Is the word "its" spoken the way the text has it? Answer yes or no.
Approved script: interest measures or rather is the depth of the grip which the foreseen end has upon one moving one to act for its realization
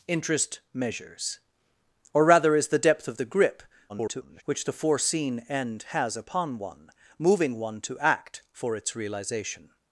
yes